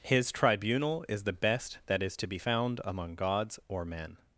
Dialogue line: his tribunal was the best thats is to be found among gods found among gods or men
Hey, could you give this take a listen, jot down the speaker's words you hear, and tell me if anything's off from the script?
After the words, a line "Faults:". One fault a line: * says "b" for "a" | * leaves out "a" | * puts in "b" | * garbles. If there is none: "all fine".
his tribunal is the best that is to be found among gods or men
Faults:
* says "is" for "was"
* says "that" for "thats"
* leaves out "found among gods"